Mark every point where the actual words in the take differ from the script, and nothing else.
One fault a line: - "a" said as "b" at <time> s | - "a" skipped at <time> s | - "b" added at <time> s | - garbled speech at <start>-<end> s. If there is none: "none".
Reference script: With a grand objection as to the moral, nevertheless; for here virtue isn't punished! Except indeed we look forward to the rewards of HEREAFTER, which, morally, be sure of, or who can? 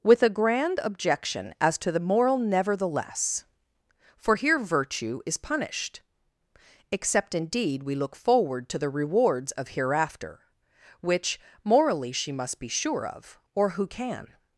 - "isn't" said as "is" at 5.2 s
- "she must" added at 12.1 s